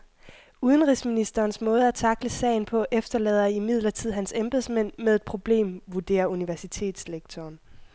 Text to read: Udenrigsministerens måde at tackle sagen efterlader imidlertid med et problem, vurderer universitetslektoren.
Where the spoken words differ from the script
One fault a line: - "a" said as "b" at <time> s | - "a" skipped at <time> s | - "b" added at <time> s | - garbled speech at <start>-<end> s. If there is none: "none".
- "på" added at 2.6 s
- "hans embedsmænd" added at 4.1 s